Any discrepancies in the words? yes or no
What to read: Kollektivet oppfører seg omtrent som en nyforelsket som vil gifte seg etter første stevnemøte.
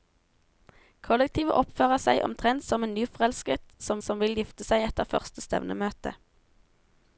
yes